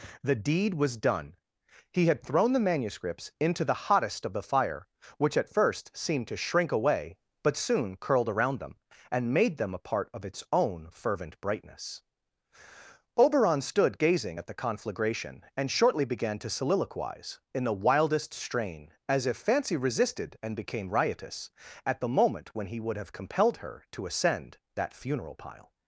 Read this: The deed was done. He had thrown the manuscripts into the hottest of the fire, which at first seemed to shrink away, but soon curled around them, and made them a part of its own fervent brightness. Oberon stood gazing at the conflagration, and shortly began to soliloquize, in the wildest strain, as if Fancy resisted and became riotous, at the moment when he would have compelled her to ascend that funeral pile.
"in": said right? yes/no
yes